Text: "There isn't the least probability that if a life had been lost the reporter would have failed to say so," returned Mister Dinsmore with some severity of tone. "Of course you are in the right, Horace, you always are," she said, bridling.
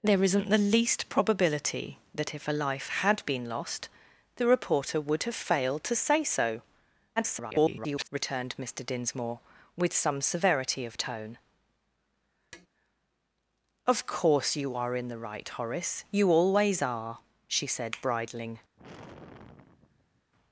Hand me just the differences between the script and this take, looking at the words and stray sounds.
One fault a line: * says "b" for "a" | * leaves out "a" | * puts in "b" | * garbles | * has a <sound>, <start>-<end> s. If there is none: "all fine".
* garbles
* has a tap, 12.5-12.7 s
* has a sigh, 18.7-20.3 s